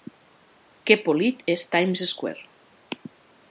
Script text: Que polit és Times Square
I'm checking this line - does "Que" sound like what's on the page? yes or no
yes